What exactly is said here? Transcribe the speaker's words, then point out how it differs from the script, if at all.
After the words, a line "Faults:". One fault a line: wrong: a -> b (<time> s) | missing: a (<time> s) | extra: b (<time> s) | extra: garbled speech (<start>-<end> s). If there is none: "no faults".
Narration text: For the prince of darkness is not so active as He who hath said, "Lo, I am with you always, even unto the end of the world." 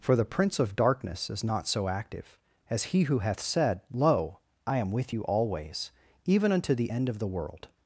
For the prince of darkness is not so active as He who hath said, "Lo, I am with you always, even unto the end of the world."
Faults:
no faults